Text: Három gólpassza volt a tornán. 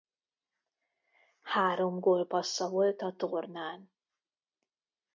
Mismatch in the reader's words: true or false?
false